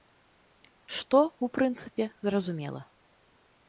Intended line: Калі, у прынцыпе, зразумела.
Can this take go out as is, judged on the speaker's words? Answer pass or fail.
fail